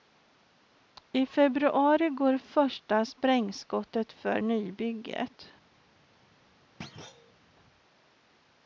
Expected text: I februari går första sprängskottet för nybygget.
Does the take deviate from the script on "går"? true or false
false